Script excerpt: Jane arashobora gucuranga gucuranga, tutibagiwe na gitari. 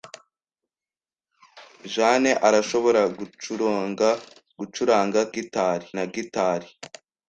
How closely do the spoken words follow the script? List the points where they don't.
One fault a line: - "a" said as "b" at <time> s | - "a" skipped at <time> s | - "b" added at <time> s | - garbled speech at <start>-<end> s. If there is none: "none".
- "tutibagiwe" said as "gitari" at 5.3 s